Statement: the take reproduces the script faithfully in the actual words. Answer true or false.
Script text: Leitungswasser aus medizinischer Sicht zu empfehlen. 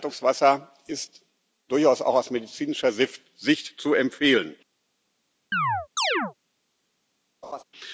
false